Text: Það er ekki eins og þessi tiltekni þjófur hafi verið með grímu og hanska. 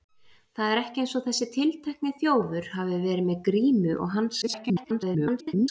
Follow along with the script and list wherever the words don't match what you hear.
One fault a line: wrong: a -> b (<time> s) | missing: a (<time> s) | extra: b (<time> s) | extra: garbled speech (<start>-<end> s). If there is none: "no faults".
extra: garbled speech (4.4-5.7 s)